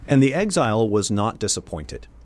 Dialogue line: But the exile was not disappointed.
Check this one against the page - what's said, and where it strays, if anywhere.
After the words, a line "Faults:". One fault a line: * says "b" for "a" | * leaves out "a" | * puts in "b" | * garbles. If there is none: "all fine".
And the exile was not disappointed.
Faults:
* says "And" for "But"